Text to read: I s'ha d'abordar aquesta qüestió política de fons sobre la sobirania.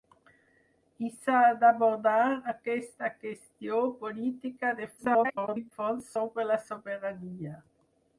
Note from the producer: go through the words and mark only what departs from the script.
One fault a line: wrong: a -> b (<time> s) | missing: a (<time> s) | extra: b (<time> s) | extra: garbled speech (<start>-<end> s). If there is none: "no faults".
extra: garbled speech (5.0-5.7 s)